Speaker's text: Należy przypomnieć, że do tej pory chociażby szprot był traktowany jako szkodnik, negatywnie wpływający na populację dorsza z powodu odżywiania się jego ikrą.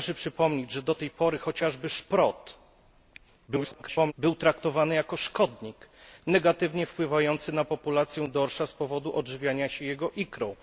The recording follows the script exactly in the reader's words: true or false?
false